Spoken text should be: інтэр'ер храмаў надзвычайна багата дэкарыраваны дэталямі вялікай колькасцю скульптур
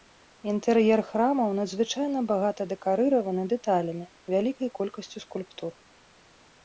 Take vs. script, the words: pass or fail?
pass